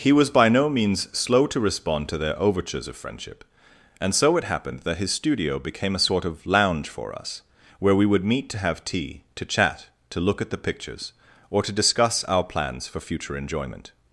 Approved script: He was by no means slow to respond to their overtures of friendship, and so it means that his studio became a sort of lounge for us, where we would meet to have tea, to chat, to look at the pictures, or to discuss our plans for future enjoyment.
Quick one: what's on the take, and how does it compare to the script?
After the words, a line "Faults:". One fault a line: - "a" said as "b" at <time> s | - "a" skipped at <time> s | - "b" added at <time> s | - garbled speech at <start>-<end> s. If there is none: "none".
He was by no means slow to respond to their overtures of friendship, and so it happened that his studio became a sort of lounge for us, where we would meet to have tea, to chat, to look at the pictures, or to discuss our plans for future enjoyment.
Faults:
- "means" said as "happened" at 4.5 s